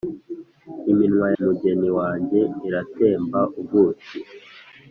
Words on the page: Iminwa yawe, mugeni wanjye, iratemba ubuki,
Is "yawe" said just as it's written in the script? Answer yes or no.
no